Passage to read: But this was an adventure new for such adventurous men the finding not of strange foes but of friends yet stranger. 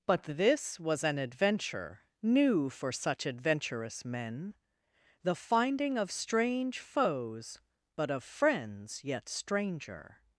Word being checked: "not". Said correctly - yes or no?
no